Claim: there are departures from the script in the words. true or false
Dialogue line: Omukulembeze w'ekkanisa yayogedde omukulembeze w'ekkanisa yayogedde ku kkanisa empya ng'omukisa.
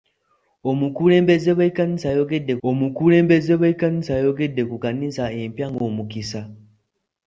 false